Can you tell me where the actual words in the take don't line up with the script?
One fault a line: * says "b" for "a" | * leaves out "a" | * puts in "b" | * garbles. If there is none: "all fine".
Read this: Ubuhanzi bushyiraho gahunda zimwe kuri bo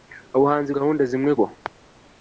* leaves out "bushyiraho"
* leaves out "kuri"